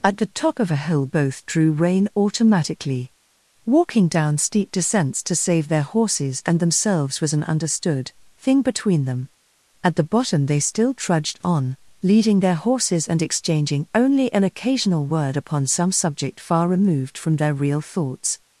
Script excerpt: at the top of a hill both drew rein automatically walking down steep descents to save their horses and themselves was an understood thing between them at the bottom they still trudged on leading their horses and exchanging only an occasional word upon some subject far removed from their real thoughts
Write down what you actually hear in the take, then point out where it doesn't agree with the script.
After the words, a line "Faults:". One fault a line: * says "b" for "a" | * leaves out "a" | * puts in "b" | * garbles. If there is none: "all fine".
at the top of a hill both drew rein automatically walking down steep descents to save their horses and themselves was an understood thing between them at the bottom they still trudged on leading their horses and exchanging only an occasional word upon some subject far removed from their real thoughts
Faults:
all fine